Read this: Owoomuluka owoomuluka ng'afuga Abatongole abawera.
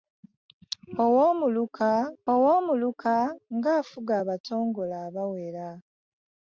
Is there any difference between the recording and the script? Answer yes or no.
no